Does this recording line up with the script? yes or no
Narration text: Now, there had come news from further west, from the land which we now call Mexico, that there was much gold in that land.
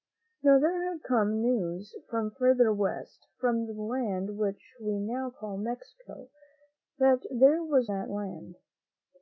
no